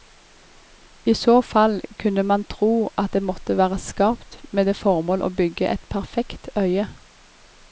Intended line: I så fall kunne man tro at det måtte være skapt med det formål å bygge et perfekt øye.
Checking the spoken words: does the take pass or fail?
pass